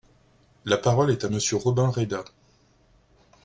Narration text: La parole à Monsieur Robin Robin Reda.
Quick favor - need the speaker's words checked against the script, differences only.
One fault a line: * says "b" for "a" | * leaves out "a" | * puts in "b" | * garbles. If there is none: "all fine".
* puts in "est"
* leaves out "Robin"